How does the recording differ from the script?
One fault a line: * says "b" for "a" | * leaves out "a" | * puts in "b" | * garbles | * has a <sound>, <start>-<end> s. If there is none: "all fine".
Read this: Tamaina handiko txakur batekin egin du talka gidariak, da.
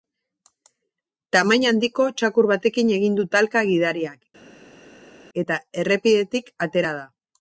* puts in "eta errepidetik atera"